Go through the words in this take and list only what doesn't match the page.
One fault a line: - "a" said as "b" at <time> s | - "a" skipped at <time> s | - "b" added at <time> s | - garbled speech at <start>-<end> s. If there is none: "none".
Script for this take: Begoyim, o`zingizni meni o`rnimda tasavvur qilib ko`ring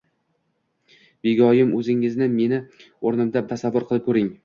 none